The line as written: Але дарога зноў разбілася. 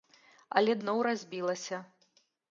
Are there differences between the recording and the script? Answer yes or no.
yes